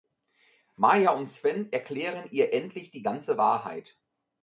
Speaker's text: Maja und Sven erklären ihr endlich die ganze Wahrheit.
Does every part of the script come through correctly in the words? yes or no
yes